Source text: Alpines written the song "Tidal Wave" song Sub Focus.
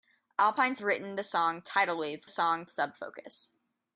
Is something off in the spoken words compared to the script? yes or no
no